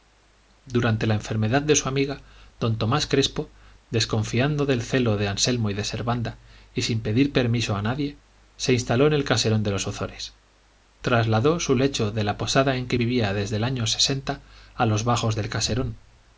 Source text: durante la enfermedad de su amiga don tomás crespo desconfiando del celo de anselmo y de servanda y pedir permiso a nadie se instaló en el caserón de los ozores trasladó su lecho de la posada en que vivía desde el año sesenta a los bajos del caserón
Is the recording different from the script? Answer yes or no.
yes